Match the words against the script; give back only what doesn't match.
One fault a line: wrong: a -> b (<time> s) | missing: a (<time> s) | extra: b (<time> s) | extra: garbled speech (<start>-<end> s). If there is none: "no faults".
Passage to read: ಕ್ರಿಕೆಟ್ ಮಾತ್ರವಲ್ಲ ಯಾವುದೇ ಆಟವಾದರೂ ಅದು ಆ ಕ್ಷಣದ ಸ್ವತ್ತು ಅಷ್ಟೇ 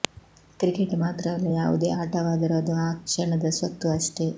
no faults